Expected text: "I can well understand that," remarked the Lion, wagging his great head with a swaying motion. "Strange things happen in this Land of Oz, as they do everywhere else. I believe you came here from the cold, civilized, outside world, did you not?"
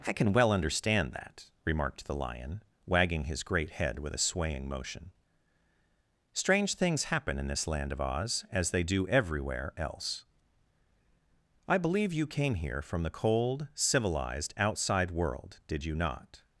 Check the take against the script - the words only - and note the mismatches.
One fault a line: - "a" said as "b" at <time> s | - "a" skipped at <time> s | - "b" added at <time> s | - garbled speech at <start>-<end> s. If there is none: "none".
none